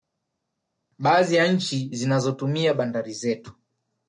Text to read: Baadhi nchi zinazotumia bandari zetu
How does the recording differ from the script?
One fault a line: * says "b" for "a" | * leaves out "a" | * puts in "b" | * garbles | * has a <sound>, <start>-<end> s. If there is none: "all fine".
* puts in "ya"